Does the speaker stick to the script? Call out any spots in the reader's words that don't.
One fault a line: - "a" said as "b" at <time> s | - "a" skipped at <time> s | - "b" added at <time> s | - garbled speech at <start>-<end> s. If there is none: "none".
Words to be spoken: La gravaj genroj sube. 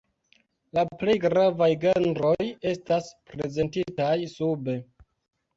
- "plej" added at 1.0 s
- "estas prezentitaj" added at 2.7 s